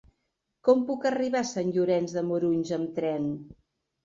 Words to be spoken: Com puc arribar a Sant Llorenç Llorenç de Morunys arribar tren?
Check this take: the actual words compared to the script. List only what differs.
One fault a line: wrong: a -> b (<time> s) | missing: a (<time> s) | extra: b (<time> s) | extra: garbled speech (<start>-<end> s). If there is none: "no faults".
missing: Llorenç (2.2 s)
wrong: arribar -> amb (2.8 s)